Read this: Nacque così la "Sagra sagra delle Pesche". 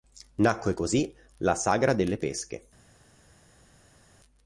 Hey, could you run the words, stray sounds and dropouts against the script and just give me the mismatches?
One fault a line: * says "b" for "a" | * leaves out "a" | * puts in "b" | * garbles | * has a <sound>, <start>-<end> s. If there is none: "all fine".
* leaves out "sagra"